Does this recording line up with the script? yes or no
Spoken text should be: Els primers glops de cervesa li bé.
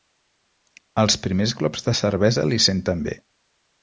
no